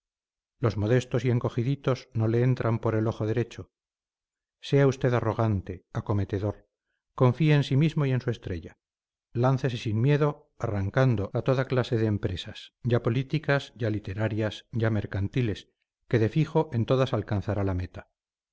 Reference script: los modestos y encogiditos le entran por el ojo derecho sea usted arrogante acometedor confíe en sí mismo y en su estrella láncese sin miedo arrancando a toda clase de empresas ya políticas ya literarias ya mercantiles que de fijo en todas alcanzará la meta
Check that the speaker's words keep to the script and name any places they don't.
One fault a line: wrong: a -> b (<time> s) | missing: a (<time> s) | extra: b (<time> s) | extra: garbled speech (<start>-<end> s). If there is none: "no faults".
extra: no (2.1 s)